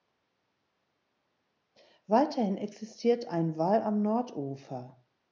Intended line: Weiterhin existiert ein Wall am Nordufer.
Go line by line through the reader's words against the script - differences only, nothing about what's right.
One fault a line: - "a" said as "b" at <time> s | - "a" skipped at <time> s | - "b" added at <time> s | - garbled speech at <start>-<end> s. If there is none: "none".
none